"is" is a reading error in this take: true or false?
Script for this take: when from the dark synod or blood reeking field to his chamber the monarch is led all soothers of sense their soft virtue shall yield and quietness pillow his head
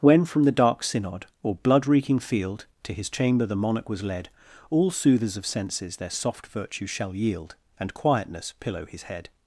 true